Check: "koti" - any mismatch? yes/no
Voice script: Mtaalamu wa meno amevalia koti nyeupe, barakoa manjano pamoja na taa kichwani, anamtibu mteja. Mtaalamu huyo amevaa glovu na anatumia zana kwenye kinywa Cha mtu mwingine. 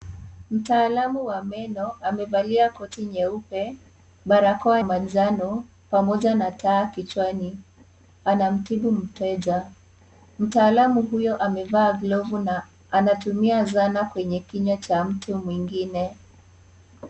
no